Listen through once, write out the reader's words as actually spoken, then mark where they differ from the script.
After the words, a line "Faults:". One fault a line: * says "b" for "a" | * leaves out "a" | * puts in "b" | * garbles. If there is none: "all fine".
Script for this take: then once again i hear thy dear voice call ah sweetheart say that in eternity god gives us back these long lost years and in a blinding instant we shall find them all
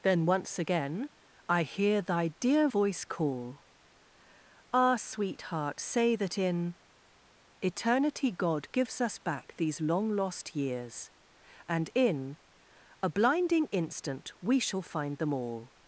then once again i hear thy dear voice call ah sweetheart say that in eternity god gives us back these long lost years and in a blinding instant we shall find them all
Faults:
all fine